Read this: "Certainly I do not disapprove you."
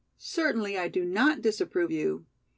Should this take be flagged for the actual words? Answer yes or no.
no